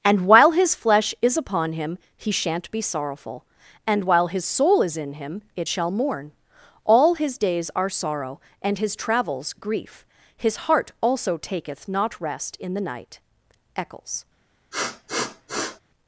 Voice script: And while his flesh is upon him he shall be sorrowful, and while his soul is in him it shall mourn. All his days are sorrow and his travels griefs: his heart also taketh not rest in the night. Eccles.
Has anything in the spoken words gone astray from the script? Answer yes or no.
yes